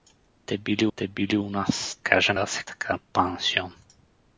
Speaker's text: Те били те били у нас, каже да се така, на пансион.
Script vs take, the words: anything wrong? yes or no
no